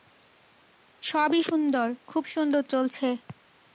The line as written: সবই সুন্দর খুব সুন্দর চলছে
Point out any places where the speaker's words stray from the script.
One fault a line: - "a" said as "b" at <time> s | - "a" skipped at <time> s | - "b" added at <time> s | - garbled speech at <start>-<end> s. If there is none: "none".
none